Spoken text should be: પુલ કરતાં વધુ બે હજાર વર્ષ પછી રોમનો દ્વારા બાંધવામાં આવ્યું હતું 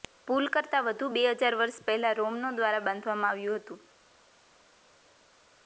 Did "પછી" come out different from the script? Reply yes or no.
yes